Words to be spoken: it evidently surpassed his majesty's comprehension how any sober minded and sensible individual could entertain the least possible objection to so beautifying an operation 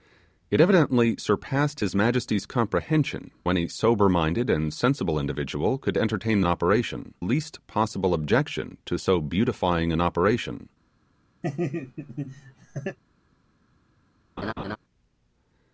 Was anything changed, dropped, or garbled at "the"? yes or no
yes